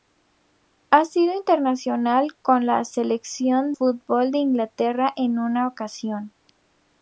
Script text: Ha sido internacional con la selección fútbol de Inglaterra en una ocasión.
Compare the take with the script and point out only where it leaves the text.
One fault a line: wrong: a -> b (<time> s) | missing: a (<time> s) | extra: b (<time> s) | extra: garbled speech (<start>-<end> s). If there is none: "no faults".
no faults